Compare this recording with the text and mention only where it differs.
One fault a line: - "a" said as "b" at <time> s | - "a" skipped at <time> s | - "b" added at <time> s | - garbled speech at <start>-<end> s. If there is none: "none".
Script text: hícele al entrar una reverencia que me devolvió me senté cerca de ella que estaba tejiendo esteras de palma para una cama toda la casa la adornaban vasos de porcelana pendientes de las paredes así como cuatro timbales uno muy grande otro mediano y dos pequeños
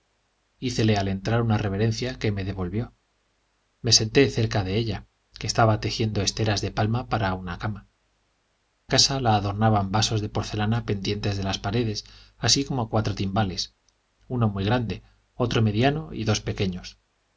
- "toda la" skipped at 7.9 s